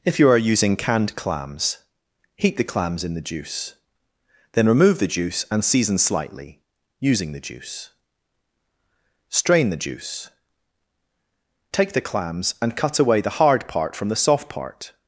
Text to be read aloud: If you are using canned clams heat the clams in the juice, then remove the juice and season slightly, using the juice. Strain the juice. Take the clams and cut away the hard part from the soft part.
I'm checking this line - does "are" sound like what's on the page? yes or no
yes